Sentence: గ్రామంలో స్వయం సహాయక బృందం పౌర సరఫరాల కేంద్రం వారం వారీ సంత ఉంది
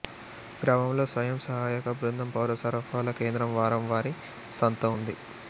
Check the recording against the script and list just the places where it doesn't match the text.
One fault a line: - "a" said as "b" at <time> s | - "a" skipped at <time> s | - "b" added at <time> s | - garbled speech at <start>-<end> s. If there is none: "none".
none